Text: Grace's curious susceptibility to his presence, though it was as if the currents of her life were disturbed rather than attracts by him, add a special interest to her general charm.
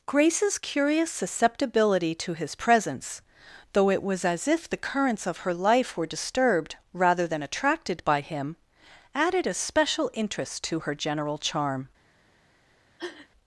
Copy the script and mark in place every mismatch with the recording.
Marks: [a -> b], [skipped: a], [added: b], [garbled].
Grace's curious susceptibility to his presence, though it was as if the currents of her life were disturbed rather than [attracts -> attracted] by him, [add -> added] a special interest to her general charm.